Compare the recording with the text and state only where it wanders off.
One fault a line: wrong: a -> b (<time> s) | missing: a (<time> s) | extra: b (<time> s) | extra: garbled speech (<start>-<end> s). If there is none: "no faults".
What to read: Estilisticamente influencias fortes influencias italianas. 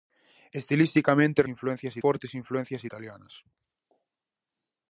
no faults